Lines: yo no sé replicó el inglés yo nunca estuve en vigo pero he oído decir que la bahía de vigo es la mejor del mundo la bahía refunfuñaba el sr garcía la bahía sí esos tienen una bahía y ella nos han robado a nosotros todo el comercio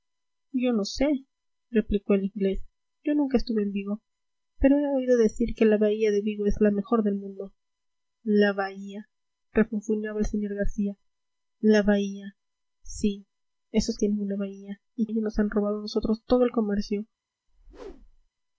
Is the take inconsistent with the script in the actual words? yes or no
no